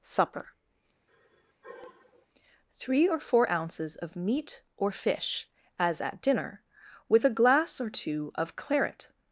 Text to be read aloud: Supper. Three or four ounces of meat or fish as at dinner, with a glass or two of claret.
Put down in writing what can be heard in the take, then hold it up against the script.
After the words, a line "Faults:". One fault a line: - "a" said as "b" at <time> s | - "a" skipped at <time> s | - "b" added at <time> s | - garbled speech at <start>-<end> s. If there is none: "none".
Supper. Three or four ounces of meat or fish as at dinner, with a glass or two of claret.
Faults:
none